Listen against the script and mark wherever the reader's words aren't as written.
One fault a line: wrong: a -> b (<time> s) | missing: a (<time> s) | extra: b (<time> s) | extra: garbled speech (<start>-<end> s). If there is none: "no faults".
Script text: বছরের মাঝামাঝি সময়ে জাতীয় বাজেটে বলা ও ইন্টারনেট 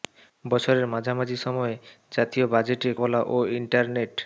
no faults